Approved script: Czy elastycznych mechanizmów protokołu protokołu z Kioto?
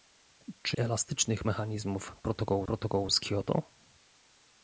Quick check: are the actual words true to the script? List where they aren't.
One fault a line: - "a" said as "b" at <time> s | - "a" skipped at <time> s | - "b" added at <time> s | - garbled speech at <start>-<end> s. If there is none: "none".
none